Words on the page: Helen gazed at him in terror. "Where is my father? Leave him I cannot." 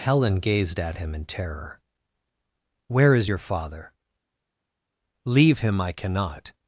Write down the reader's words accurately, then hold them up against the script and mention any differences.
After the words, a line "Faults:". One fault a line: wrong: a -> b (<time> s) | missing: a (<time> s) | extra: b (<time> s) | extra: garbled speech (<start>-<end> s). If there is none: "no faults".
Helen gazed at him in terror. "Where is your father? Leave him I cannot."
Faults:
wrong: my -> your (3.3 s)